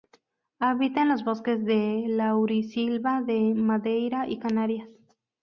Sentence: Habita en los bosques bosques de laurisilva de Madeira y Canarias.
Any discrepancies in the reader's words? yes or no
yes